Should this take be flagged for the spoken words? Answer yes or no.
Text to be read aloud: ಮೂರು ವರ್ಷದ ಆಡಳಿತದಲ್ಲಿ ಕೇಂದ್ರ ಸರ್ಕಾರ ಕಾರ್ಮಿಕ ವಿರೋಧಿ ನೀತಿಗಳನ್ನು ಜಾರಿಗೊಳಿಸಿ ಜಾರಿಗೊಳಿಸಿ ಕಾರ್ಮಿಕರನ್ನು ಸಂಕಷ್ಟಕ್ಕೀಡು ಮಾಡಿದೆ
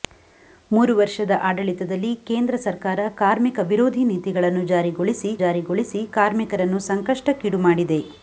no